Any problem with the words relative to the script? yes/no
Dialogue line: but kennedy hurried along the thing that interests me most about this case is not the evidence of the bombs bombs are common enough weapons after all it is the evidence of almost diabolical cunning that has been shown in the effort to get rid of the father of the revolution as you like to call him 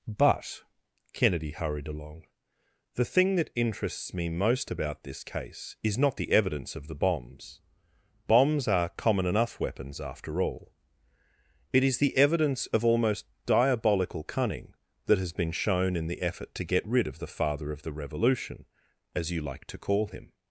no